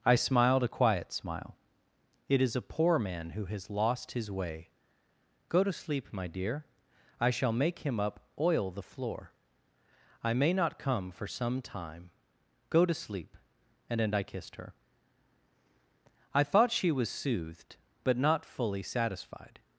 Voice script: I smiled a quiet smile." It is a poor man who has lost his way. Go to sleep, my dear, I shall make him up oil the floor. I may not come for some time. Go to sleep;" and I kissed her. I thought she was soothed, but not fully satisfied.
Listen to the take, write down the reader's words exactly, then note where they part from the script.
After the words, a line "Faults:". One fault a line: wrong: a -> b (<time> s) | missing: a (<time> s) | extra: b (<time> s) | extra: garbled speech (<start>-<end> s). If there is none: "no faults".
I smiled a quiet smile." It is a poor man who has lost his way. Go to sleep, my dear, I shall make him up oil the floor. I may not come for some time. Go to sleep;" and then I kissed her. I thought she was soothed, but not fully satisfied.
Faults:
extra: then (14.0 s)